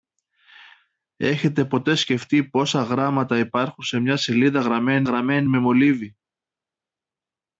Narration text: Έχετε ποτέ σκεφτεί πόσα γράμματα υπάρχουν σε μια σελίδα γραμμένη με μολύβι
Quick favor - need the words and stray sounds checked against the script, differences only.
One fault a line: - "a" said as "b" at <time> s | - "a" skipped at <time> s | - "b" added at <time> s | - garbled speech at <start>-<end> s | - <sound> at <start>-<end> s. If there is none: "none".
- "γραμμένη" added at 5.0 s